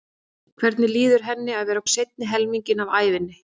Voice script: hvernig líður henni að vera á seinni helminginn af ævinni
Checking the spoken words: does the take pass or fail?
pass